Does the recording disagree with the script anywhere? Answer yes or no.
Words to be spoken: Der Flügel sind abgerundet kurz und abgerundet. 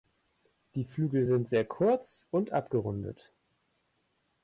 yes